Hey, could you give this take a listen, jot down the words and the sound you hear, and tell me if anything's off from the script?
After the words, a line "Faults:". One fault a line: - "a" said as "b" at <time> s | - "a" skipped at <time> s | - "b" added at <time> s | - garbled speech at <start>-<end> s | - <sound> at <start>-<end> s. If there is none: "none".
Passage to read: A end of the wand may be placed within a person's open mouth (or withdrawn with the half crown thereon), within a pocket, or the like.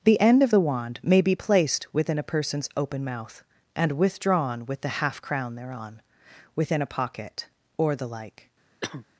The end of the wand may be placed within a person's open mouth (and withdrawn with the half crown thereon), within a pocket, or the like.
Faults:
- "A" said as "The" at 0.0 s
- "or" said as "and" at 3.7 s
- cough at 8.8-9.1 s